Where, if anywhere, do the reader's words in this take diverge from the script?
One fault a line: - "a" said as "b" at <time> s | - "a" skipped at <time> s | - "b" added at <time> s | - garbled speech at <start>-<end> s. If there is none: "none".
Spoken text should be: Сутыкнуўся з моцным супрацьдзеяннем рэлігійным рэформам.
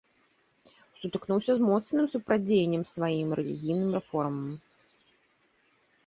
- "сваім" added at 2.9 s